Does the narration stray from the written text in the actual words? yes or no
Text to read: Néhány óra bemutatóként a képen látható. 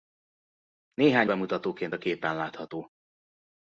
yes